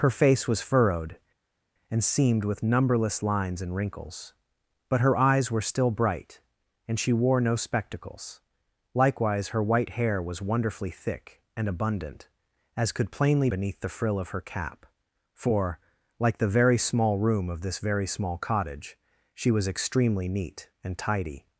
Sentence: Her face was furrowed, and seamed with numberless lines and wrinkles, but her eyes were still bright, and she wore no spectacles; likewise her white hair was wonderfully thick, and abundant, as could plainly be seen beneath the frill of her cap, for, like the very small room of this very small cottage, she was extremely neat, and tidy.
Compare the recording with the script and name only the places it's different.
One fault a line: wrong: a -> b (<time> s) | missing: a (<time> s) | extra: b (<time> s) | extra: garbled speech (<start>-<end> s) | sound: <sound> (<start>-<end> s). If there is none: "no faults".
missing: be seen (13.5 s)